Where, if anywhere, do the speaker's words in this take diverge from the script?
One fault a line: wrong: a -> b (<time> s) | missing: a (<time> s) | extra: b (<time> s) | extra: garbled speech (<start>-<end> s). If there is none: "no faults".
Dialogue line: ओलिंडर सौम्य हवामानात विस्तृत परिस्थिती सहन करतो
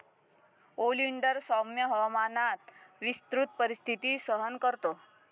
no faults